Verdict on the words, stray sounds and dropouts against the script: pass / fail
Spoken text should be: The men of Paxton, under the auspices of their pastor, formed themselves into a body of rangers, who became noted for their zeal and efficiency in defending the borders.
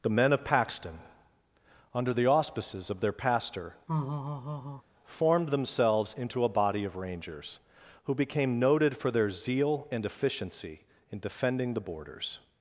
fail